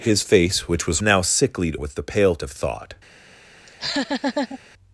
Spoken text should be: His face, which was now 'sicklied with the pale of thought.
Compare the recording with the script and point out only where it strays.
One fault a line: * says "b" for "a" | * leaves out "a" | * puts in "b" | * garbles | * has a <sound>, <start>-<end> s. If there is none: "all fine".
* has a laugh, 3.7-4.6 s